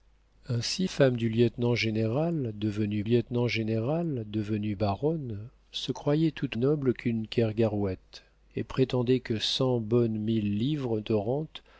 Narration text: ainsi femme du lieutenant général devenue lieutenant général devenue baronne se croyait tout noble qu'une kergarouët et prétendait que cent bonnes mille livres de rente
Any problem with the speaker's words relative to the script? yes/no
no